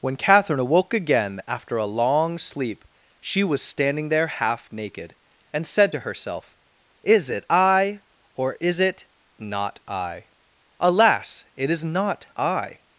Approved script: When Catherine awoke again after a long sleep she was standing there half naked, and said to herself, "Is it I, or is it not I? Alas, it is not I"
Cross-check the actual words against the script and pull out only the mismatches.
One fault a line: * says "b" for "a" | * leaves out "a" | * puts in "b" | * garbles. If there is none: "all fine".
all fine